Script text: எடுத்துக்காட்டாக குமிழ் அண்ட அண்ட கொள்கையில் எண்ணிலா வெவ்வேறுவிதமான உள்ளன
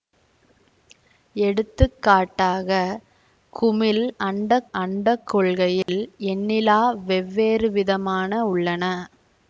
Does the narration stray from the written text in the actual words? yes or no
no